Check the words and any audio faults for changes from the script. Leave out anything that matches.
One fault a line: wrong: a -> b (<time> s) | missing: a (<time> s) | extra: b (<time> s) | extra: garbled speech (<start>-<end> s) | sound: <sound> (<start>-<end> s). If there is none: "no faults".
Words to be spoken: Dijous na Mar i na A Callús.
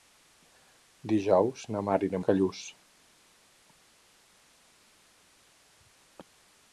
no faults